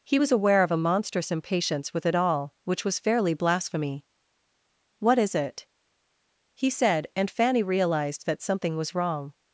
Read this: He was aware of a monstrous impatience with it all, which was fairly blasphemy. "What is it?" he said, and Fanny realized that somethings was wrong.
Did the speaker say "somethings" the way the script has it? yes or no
no